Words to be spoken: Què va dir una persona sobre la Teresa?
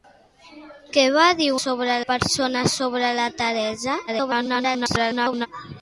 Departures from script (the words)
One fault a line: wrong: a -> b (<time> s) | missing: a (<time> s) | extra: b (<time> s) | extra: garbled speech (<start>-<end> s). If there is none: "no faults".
wrong: una -> sobre (1.6 s)
extra: garbled speech (4.1-5.5 s)